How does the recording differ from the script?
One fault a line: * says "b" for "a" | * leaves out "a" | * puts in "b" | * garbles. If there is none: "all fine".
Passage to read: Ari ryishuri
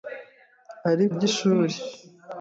all fine